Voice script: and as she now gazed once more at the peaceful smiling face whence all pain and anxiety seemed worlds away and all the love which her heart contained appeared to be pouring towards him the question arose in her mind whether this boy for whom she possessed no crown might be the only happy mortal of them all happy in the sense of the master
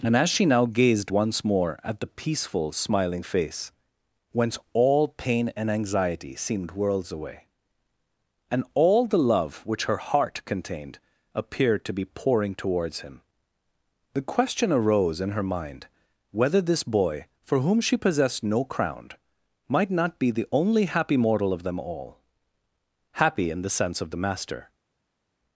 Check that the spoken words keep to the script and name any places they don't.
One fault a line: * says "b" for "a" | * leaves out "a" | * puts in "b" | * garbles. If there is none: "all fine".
* puts in "not"